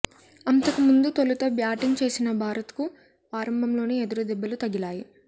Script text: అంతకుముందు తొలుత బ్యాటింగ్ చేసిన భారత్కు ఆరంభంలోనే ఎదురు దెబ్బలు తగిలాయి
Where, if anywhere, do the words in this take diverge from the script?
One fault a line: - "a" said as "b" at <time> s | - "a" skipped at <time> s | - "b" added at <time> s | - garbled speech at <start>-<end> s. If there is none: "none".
none